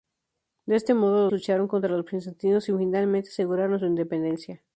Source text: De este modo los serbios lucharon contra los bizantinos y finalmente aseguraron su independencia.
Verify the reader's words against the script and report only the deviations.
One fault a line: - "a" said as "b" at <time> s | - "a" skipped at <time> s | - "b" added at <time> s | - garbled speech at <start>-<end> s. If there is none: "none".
- "los serbios" skipped at 1.3 s